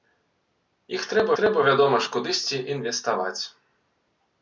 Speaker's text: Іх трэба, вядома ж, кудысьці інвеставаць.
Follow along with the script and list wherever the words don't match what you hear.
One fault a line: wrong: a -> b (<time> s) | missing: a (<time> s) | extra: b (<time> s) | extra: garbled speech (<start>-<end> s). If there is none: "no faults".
extra: трэба (1.4 s)